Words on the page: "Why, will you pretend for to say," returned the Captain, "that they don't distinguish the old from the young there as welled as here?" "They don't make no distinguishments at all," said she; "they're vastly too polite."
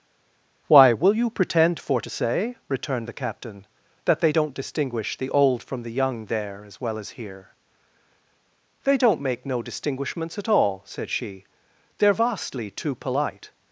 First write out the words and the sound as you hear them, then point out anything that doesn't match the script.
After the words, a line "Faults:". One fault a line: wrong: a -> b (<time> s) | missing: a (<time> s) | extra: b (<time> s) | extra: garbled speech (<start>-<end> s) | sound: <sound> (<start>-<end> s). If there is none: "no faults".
"Why, will you pretend for to say," returned the Captain, "that they don't distinguish the old from the young there as well as here?" "They don't make no distinguishments at all," said she; "they're vastly too polite."
Faults:
wrong: welled -> well (6.8 s)